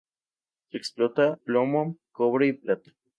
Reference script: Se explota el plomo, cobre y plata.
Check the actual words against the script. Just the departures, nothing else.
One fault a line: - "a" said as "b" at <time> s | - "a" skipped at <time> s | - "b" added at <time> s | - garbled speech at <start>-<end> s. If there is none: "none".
- "el" skipped at 1.4 s